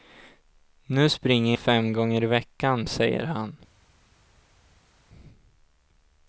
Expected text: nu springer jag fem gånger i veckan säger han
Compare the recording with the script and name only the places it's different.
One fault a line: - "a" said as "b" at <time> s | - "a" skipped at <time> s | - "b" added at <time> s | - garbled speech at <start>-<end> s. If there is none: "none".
- "jag" skipped at 1.6 s